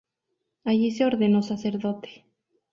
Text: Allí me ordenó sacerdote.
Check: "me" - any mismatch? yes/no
yes